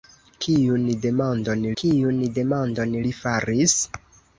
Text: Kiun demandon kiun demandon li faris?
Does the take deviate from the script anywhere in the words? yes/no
no